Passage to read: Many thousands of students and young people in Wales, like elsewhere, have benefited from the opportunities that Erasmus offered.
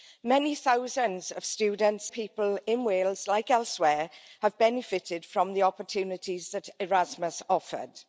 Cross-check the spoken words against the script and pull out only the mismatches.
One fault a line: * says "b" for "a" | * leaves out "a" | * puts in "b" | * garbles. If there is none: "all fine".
* leaves out "and young"